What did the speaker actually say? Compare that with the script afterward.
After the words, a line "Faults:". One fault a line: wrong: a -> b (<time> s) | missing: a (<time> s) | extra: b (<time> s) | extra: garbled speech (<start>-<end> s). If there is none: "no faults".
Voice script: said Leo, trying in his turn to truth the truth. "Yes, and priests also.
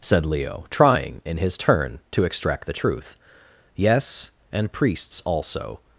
said Leo, trying in his turn to extract the truth. "Yes, and priests also.
Faults:
wrong: truth -> extract (2.2 s)